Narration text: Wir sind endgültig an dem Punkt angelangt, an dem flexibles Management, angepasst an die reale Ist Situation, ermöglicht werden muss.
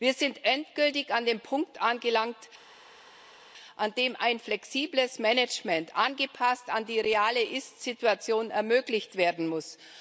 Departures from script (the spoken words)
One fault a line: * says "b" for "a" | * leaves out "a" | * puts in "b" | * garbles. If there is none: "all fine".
* puts in "ein"